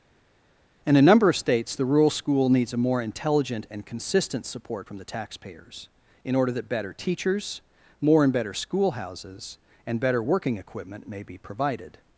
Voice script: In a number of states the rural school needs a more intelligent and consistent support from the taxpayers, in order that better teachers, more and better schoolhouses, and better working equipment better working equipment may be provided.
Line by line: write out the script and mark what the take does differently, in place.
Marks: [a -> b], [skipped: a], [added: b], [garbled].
In a number of states the rural school needs a more intelligent and consistent support from the taxpayers, in order that better teachers, more and better schoolhouses, and better working equipment [skipped: better working equipment] may be provided.